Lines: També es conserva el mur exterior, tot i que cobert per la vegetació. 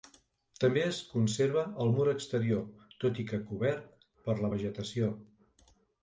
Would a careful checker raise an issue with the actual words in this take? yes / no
no